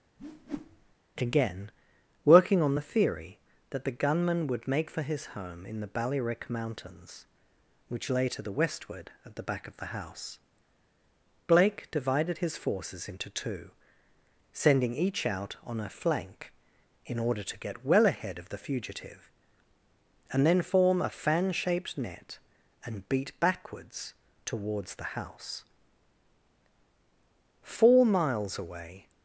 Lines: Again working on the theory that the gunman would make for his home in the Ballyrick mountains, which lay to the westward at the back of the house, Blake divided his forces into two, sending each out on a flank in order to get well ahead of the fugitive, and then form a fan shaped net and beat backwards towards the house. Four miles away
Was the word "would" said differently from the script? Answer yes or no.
no